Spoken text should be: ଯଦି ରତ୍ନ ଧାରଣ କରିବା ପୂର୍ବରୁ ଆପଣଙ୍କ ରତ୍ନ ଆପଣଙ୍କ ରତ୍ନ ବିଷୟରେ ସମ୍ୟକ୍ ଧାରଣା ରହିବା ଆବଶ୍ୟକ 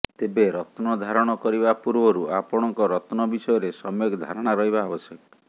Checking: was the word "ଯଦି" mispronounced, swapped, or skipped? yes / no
yes